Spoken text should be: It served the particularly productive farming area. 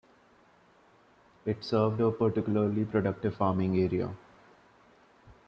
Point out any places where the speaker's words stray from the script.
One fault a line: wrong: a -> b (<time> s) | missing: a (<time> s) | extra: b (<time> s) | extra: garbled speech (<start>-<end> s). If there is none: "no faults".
wrong: the -> a (2.0 s)